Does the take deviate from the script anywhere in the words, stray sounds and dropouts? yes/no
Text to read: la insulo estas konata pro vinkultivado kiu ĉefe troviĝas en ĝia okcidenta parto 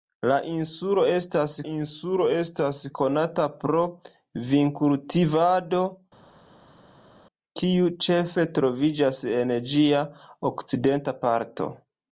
yes